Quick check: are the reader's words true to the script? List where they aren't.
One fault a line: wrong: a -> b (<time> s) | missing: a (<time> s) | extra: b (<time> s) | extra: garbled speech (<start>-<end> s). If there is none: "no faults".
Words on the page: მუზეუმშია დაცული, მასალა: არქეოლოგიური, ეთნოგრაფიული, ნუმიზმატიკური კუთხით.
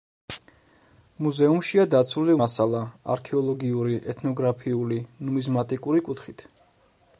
no faults